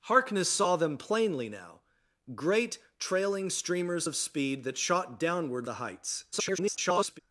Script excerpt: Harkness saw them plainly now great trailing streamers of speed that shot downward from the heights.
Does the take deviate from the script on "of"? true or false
false